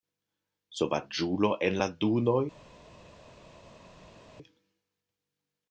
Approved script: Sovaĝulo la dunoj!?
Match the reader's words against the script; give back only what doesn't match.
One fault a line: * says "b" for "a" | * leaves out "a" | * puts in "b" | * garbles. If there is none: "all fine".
* puts in "en"